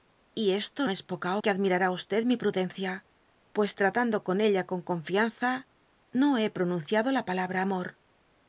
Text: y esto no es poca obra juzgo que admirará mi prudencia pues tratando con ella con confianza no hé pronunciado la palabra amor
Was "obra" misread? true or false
true